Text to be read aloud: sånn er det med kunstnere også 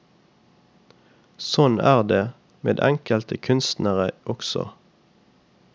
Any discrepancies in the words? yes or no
yes